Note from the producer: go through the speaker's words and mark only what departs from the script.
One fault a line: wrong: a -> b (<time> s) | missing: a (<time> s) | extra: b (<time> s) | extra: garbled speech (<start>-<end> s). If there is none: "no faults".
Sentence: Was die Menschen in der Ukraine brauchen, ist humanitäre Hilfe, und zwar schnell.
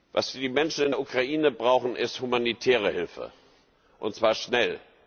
no faults